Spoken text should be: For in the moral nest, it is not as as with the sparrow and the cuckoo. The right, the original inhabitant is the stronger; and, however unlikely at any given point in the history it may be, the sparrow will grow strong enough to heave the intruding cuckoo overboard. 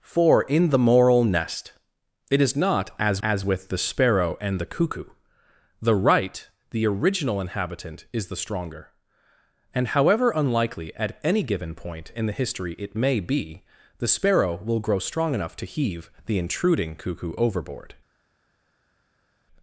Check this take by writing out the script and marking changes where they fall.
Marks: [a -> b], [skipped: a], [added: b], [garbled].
For in the moral nest, it is not as as with the sparrow and the cuckoo. The right, the original inhabitant is the stronger; and, however unlikely at any given point in the history it may be, the sparrow will grow strong enough to heave the intruding cuckoo overboard.